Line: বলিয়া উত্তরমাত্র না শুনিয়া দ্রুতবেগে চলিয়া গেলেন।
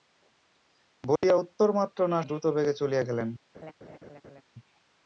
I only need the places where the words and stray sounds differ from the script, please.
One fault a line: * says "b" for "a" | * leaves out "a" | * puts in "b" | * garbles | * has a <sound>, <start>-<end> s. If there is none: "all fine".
* has a dropout, 1.2-1.2 s
* leaves out "শুনিয়া"
* has a laugh, 3.5-4.4 s